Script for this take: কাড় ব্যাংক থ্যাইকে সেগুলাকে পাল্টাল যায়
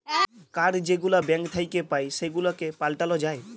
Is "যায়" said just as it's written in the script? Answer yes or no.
yes